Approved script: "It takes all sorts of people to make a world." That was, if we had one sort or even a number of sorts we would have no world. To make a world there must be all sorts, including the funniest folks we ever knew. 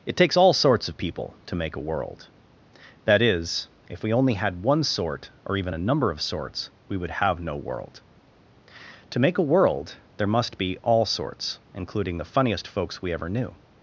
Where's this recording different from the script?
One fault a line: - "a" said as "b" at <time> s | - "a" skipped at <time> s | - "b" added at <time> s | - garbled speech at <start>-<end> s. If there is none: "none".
- "was" said as "is" at 3.2 s
- "only" added at 4.1 s